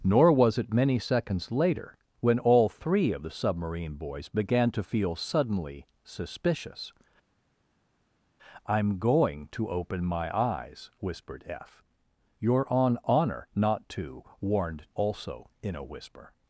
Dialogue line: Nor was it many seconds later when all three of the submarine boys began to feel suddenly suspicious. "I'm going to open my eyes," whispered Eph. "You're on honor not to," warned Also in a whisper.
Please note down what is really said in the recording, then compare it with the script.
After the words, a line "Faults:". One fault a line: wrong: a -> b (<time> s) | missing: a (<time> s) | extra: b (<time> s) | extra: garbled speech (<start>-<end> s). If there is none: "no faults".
Nor was it many seconds later when all three of the submarine boys began to feel suddenly suspicious. "I'm going to open my eyes," whispered Eph. "You're on honor not to," warned Also in a whisper.
Faults:
no faults